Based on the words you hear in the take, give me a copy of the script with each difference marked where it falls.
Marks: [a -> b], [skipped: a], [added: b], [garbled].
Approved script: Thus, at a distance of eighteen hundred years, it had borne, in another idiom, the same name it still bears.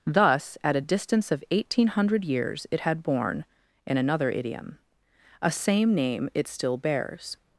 Thus, at a distance of eighteen hundred years, it had borne, in another idiom, [the -> a] same name it still bears.